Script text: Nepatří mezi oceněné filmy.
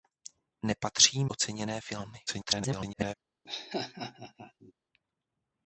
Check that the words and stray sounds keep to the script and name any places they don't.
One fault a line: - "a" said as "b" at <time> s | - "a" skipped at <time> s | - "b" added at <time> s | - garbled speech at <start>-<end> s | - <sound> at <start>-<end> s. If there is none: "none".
- "mezi" skipped at 1.2 s
- garbled speech at 2.3-3.1 s
- laugh at 3.4-4.7 s